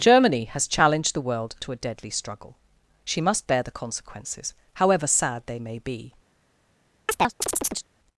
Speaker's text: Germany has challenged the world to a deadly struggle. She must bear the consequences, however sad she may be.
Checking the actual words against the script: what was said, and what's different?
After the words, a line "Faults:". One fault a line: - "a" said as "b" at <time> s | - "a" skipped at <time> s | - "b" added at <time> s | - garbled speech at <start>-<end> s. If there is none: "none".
Germany has challenged the world to a deadly struggle. She must bear the consequences, however sad they may be.
Faults:
- "she" said as "they" at 5.5 s